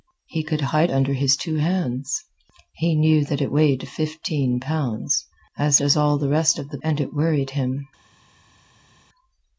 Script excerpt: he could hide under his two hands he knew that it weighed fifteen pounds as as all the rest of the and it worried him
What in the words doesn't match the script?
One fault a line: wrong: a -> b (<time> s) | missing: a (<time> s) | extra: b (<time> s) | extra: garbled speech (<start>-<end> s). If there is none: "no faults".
no faults